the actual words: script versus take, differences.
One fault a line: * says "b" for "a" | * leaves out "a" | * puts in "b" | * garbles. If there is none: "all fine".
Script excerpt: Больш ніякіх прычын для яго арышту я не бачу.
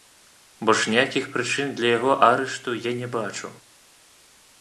all fine